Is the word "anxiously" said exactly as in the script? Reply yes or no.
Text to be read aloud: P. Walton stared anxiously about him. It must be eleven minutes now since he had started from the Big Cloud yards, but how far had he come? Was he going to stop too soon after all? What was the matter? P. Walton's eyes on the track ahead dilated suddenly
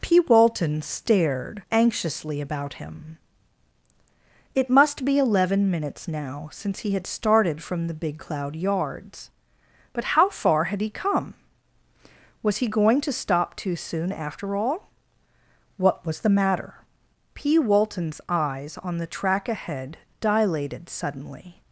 yes